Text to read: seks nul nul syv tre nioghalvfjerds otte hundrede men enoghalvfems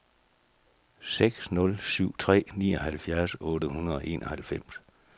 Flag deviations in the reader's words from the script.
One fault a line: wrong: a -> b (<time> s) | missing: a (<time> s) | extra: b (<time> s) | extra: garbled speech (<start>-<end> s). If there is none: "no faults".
missing: nul (1.8 s)
wrong: men -> og (4.0 s)